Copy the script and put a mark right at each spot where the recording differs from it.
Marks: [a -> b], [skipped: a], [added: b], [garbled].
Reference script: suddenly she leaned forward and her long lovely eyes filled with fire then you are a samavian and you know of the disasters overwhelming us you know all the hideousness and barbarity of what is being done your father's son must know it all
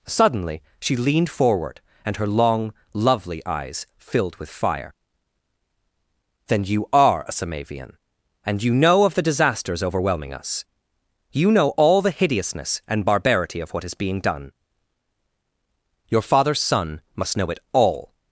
suddenly she leaned forward and her long lovely eyes filled with fire then you are a samavian and you know of the disasters overwhelming us you know all the hideousness and barbarity of what is being done your father's son must know it all